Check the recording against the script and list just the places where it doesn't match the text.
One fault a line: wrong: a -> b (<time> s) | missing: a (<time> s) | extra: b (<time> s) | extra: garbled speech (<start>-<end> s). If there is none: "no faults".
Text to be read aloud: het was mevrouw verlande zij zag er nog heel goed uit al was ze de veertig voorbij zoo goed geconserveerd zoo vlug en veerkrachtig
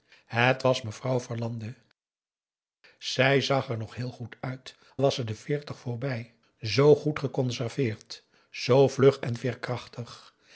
missing: al (4.8 s)